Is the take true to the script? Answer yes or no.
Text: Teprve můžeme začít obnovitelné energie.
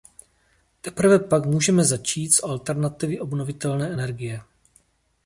no